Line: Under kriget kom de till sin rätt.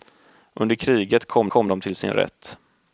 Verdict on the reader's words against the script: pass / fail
fail